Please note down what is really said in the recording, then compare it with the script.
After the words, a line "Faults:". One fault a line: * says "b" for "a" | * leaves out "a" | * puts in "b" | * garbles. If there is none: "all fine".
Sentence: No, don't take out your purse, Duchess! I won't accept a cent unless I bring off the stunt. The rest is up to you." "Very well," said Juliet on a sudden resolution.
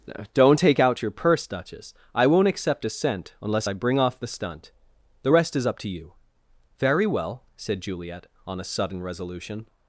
don't take out your purse, Duchess! I won't accept a cent unless I bring off the stunt. The rest is up to you." "Very well," said Juliet on a sudden resolution.
Faults:
* leaves out "No"